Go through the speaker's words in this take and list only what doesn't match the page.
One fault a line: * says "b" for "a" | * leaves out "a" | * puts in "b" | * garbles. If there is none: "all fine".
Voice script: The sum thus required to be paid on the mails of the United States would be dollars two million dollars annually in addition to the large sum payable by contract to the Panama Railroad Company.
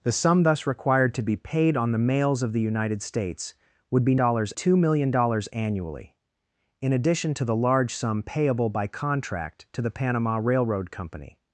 all fine